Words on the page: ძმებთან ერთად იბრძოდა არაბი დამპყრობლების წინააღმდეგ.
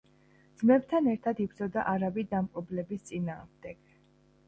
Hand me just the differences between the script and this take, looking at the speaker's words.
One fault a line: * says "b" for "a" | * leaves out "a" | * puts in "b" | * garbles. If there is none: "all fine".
all fine